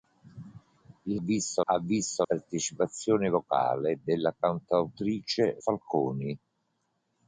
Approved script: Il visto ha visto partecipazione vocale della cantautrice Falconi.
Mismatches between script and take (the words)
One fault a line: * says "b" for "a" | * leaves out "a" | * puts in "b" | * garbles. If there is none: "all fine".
all fine